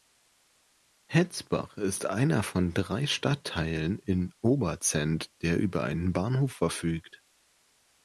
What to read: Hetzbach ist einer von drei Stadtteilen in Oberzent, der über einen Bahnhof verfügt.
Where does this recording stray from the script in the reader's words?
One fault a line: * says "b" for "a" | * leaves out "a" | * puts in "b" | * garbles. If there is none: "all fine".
all fine